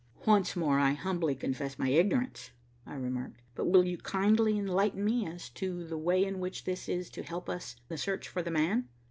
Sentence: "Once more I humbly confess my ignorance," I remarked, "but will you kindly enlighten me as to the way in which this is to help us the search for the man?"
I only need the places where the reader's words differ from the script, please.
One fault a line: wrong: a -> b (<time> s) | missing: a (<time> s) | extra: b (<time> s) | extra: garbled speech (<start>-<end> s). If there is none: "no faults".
no faults